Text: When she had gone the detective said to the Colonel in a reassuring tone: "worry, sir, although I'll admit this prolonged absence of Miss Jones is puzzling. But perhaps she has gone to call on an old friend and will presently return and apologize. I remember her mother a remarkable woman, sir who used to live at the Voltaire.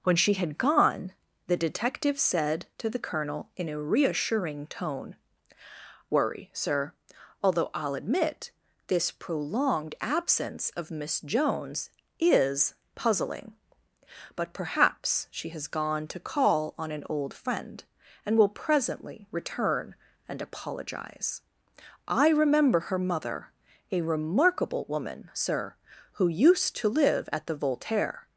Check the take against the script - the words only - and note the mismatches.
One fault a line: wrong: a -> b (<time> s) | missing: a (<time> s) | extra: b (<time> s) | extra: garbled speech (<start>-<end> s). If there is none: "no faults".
no faults